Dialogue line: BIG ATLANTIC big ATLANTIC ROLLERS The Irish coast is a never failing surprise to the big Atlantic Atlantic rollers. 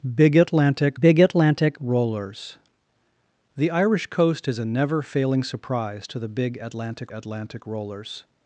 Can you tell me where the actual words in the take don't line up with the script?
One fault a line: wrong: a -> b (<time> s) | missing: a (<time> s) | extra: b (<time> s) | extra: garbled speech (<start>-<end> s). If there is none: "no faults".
no faults